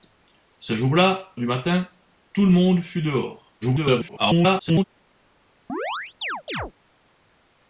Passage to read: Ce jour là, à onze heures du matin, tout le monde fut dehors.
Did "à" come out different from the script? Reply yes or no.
yes